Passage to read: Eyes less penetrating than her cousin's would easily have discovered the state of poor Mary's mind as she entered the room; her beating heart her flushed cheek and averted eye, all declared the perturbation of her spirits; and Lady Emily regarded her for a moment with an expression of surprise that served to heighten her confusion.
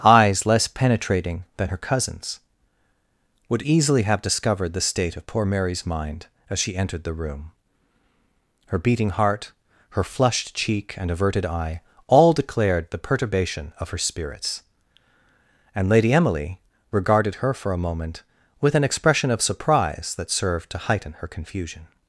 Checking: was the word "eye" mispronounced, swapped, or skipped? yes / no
no